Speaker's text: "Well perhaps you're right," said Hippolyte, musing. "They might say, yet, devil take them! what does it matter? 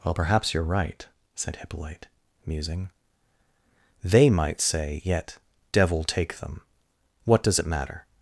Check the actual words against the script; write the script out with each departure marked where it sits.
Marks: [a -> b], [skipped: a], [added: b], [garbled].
"Well perhaps you're right," said Hippolyte, musing. "They might say, yet, devil take them! what does it matter?